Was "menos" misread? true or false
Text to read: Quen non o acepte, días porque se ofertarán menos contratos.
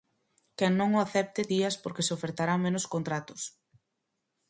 false